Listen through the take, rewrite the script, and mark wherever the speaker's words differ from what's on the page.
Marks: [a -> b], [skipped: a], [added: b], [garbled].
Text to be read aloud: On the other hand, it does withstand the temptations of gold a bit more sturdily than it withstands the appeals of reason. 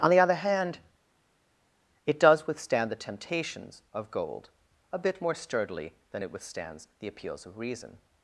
On the other hand, it does withstand the temptations of gold a bit more sturdily than it withstands the appeals of reason.